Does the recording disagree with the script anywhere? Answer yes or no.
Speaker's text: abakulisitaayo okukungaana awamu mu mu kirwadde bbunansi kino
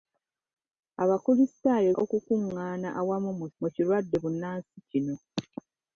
no